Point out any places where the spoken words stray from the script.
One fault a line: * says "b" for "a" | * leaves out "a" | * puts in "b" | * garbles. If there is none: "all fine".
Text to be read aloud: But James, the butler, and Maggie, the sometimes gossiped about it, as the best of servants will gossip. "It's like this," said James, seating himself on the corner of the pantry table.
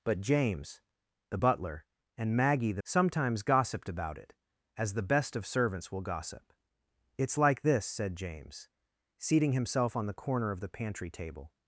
all fine